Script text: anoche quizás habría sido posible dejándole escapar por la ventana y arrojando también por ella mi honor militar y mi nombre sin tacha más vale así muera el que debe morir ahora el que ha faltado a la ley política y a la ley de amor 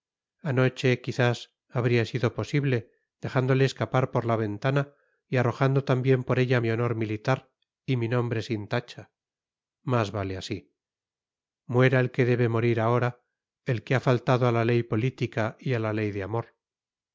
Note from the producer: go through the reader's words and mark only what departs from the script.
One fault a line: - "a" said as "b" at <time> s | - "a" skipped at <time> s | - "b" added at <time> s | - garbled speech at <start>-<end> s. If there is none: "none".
none